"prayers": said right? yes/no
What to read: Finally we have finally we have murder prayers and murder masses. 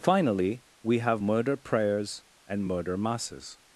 yes